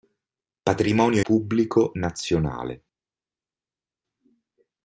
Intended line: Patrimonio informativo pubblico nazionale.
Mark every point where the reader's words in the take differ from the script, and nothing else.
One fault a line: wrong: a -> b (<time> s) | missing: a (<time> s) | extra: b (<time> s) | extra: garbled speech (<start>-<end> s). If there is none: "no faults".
missing: informativo (1.2 s)